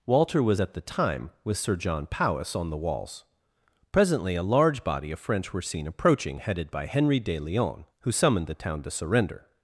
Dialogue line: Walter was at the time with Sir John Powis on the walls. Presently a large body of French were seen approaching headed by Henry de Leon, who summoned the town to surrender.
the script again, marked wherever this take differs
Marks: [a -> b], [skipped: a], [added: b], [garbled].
Walter was at the time with Sir John Powis on the walls. Presently a large body of French were seen approaching headed by Henry de Leon, who summoned the town to surrender.